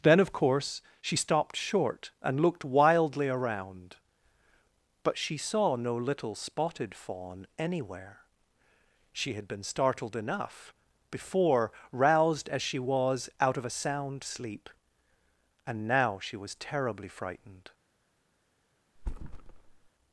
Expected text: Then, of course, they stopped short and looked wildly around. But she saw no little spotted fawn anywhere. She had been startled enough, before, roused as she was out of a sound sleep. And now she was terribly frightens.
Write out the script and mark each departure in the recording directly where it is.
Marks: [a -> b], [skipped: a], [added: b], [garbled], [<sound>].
Then, of course, [they -> she] stopped short and looked wildly around. But she saw no little spotted fawn anywhere. She had been startled enough, before, roused as she was out of a sound sleep. And now she was terribly [frightens. -> frightened] [thud]